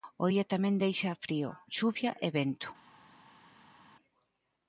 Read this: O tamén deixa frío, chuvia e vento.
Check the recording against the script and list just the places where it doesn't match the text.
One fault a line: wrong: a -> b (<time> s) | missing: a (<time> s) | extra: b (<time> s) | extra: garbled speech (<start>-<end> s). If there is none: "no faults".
extra: día (0.3 s)